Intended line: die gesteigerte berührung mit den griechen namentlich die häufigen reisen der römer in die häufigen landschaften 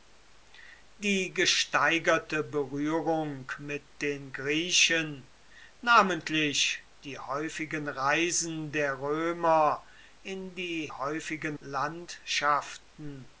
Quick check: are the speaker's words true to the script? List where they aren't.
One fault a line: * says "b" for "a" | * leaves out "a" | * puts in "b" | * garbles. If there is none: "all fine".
all fine